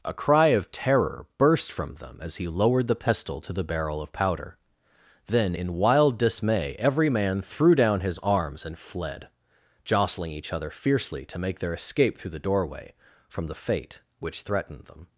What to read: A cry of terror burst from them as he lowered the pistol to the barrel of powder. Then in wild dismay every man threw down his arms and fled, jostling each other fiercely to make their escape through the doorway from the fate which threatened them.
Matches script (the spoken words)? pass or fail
pass